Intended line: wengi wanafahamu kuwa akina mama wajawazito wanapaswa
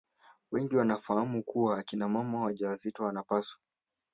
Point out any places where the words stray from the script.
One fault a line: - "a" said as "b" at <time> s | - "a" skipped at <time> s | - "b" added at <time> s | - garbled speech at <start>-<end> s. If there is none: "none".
none